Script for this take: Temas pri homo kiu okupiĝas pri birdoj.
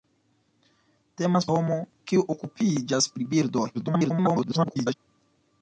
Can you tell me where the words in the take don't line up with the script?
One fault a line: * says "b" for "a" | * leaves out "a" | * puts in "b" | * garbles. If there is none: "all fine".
* leaves out "pri"
* garbles